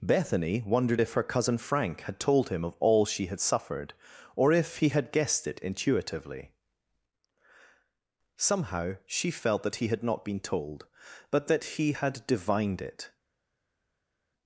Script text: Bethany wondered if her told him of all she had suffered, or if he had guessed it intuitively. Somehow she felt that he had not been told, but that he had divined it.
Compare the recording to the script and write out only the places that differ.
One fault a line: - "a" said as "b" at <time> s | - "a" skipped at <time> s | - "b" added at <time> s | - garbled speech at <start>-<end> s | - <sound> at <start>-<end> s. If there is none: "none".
- "cousin Frank had" added at 1.2 s